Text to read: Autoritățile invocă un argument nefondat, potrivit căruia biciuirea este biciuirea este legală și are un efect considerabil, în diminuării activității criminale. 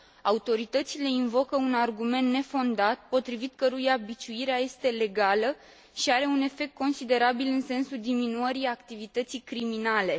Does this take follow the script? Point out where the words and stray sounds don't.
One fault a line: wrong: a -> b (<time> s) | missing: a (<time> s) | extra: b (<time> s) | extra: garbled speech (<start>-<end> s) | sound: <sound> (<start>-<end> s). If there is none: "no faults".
missing: biciuirea este (4.9 s)
extra: sensul (7.6 s)